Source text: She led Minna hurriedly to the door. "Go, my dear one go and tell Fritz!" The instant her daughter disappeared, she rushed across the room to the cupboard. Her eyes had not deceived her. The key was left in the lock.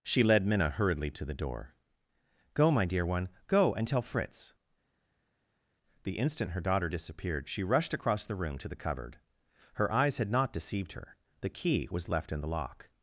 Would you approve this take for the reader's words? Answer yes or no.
yes